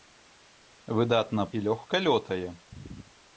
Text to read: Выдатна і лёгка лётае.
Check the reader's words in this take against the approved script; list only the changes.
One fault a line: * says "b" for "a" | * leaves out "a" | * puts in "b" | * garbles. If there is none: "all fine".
all fine